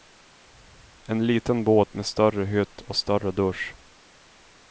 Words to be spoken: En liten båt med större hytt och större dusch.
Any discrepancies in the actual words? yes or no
no